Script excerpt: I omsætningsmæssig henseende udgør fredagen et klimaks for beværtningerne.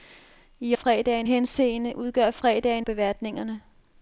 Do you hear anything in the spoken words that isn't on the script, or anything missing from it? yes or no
yes